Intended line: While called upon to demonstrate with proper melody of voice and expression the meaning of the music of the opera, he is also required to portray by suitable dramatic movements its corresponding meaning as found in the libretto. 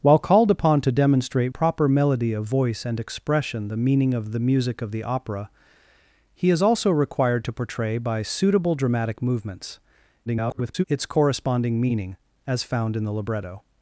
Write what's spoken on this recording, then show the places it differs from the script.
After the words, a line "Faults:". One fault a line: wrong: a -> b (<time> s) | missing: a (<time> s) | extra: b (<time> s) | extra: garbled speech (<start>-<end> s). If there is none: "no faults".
While called upon to demonstrate proper melody of voice and expression the meaning of the music of the opera, he is also required to portray by suitable dramatic movements [garbled] its corresponding meaning as found in the libretto.
Faults:
missing: with (1.5 s)
extra: garbled speech (10.3-10.8 s)